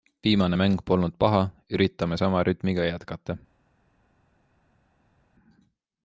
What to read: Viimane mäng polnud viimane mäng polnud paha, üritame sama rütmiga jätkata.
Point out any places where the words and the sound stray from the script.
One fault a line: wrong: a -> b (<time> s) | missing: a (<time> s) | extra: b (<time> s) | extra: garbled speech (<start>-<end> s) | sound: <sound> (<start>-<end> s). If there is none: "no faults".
missing: viimane mäng polnud (1.1 s)